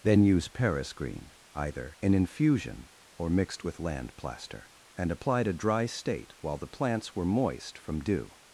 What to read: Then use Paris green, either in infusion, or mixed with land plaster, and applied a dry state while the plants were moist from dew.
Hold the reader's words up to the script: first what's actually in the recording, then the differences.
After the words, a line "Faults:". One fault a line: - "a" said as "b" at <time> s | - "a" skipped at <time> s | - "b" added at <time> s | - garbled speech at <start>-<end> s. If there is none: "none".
Then use Paris green, either in infusion, or mixed with land plaster, and applied a dry state while the plants were moist from dew.
Faults:
none